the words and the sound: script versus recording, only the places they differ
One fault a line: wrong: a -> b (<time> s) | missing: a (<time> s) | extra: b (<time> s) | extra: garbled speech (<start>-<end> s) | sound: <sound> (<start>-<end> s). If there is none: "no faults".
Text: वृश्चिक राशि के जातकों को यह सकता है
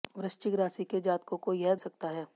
no faults